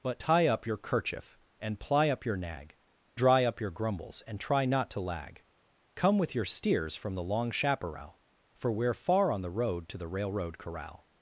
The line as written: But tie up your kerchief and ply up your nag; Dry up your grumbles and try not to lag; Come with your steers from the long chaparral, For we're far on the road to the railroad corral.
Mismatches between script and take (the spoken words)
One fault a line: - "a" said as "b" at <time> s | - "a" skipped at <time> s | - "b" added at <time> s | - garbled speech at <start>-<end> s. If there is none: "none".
none